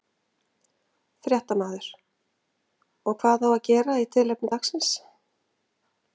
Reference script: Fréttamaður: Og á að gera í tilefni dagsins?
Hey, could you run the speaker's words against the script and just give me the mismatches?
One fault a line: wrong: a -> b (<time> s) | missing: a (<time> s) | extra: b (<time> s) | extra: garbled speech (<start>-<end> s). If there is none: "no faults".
extra: hvað (3.2 s)